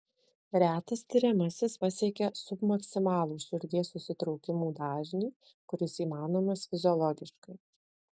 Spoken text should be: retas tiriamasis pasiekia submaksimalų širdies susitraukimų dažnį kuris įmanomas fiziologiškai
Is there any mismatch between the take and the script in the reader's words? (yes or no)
no